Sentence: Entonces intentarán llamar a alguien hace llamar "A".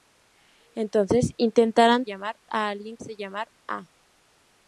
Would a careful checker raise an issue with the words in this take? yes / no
no